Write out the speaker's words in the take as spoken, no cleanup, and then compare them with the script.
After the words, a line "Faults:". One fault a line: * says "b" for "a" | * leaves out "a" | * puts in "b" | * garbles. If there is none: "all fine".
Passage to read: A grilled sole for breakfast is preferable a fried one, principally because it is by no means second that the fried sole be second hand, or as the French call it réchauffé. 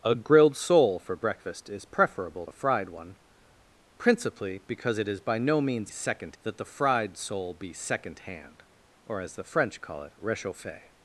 A grilled sole for breakfast is preferable a fried one, principally because it is by no means second that the fried sole be second hand, or as the French call it réchauffé.
Faults:
all fine